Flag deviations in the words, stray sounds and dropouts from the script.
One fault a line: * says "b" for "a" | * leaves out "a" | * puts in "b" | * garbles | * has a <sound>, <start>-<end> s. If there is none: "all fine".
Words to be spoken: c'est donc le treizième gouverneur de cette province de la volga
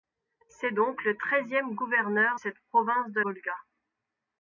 * leaves out "de"
* leaves out "la"